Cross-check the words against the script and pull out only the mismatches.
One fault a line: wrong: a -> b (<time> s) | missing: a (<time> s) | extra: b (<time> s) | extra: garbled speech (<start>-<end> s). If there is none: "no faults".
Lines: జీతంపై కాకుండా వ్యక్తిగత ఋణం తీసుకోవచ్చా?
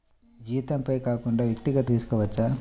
missing: ఋణం (1.9 s)